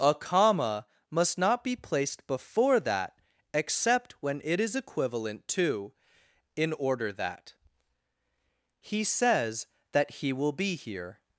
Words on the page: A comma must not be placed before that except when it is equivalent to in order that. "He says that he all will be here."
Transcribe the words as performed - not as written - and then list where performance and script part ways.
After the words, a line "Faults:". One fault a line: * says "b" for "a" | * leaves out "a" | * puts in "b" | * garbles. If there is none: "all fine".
A comma must not be placed before that except when it is equivalent to in order that. "He says that he will be here."
Faults:
* leaves out "all"